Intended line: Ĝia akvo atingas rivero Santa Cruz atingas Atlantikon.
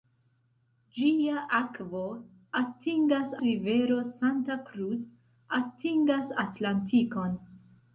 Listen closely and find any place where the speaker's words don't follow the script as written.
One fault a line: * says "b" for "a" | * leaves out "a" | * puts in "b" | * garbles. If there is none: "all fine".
all fine